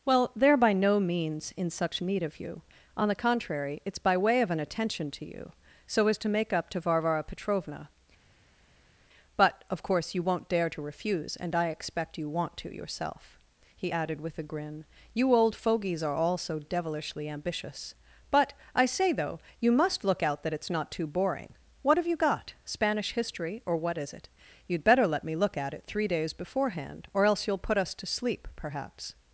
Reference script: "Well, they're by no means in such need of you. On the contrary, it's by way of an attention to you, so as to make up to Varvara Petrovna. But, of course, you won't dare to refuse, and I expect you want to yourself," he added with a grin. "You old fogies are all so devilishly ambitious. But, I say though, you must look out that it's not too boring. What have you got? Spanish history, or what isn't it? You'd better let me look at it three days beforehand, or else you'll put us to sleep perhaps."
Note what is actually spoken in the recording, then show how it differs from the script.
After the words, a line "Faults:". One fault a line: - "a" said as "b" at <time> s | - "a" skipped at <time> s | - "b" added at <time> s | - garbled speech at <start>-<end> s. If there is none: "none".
"Well, they're by no means in such need of you. On the contrary, it's by way of an attention to you, so as to make up to Varvara Petrovna. But, of course, you won't dare to refuse, and I expect you want to yourself," he added with a grin. "You old fogies are all so devilishly ambitious. But, I say though, you must look out that it's not too boring. What have you got? Spanish history, or what is it? You'd better let me look at it three days beforehand, or else you'll put us to sleep perhaps."
Faults:
- "isn't" said as "is" at 24.0 s